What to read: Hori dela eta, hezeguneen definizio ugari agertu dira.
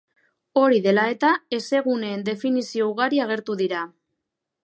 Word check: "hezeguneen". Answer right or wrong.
right